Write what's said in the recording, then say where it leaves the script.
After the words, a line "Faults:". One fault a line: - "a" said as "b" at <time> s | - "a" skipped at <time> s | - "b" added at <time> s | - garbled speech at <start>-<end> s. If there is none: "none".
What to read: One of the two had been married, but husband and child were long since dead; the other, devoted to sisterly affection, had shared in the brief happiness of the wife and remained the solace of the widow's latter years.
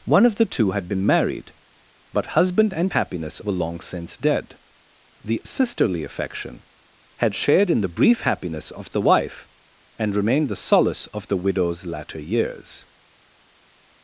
One of the two had been married, but husband and happiness were long since dead; the sisterly affection, had shared in the brief happiness of the wife and remained the solace of the widow's latter years.
Faults:
- "child" said as "happiness" at 2.9 s
- "other devoted to" skipped at 5.4 s